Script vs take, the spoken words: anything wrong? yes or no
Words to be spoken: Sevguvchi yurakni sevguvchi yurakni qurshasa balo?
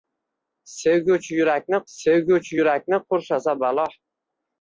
no